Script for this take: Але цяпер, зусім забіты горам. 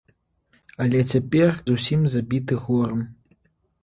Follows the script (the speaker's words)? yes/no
yes